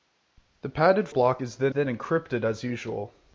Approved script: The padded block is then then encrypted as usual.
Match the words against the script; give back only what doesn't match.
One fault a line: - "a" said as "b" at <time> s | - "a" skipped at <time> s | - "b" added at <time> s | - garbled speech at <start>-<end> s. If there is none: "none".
none